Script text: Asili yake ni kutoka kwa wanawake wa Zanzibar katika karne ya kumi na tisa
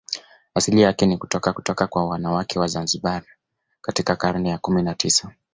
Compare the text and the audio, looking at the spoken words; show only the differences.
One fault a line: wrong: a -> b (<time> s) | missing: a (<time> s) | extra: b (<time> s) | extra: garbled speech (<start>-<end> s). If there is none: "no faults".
extra: kutoka (1.5 s)